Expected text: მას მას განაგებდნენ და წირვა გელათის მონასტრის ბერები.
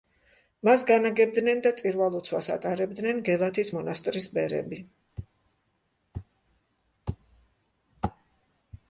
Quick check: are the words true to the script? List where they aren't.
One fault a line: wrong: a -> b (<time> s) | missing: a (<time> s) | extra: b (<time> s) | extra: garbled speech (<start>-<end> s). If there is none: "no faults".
missing: მას (0.8 s)
extra: ლოცვას ატარებდნენ (2.1 s)